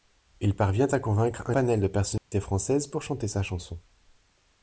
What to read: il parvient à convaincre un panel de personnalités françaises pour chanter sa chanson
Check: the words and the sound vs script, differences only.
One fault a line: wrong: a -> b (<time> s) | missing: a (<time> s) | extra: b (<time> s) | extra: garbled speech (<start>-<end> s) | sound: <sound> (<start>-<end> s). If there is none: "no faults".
sound: dropout (2.2-2.3 s)